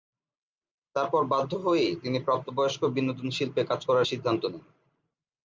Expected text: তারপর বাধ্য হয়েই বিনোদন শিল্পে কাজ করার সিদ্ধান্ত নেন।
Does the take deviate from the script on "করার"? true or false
false